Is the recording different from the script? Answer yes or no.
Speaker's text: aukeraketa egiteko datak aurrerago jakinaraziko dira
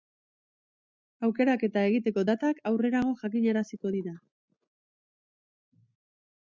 no